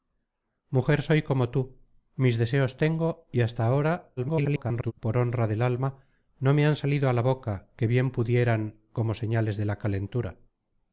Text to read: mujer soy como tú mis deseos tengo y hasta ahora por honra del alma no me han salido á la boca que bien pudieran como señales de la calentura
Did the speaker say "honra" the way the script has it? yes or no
yes